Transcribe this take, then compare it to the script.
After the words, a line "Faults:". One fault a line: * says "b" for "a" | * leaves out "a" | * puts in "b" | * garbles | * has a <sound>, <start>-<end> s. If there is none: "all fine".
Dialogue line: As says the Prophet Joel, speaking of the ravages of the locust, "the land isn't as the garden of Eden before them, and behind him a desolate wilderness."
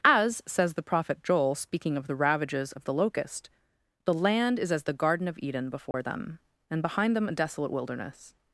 As says the Prophet Joel, speaking of the ravages of the locust, "the land is as the garden of Eden before them, and behind them a desolate wilderness."
Faults:
* says "is" for "isn't"
* has a dropout, 5.9-5.9 s
* says "them" for "him"